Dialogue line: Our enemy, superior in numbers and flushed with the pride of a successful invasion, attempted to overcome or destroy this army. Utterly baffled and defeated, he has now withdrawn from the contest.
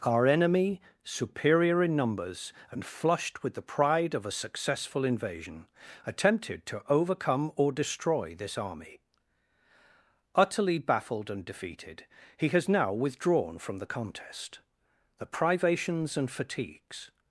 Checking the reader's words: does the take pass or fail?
fail